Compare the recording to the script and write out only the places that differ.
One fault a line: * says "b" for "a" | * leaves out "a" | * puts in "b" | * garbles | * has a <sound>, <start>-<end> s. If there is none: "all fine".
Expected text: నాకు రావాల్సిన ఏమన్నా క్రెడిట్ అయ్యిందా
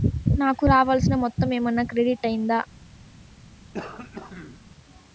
* puts in "మొత్తము"
* has a throat clearing, 3.7-4.6 s